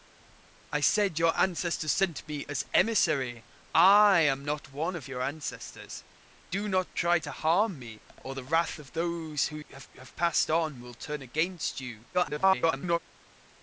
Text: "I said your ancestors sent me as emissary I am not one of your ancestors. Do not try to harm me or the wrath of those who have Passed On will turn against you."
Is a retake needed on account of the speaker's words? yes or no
yes